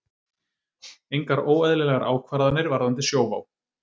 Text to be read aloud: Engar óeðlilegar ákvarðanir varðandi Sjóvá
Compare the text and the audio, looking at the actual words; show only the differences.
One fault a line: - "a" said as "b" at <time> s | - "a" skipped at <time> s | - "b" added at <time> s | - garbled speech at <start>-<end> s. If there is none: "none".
none